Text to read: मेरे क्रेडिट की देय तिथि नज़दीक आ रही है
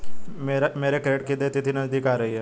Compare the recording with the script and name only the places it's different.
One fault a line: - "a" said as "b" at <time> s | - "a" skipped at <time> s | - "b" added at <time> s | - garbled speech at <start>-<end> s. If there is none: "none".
none